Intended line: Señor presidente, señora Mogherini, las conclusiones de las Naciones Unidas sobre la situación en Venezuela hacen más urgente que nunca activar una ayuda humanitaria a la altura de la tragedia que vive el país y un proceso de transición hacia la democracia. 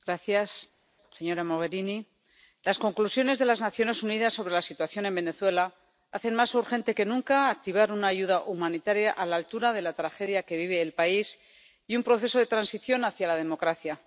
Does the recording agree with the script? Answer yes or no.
yes